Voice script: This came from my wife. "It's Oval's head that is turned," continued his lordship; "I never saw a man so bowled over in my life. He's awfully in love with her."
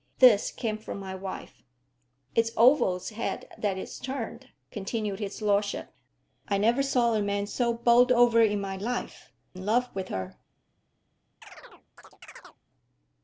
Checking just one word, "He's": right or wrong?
wrong